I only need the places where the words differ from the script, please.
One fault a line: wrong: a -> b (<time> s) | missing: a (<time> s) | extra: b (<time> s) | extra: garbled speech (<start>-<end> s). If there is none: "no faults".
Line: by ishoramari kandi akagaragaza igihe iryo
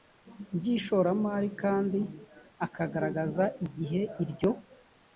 no faults